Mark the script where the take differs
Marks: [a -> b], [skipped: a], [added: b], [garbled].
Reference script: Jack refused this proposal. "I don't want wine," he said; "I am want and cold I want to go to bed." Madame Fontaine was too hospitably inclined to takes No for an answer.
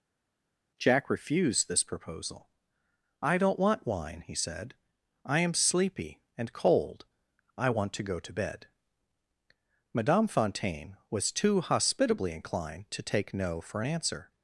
Jack refused this proposal. "I don't want wine," he said; "I am [want -> sleepy] and cold I want to go to bed." Madame Fontaine was too hospitably inclined to [takes -> take] No for an answer.